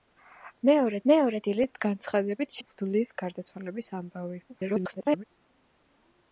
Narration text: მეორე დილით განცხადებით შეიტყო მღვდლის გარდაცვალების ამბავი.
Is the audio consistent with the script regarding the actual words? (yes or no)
no